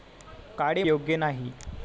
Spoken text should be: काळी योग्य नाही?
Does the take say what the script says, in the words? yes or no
yes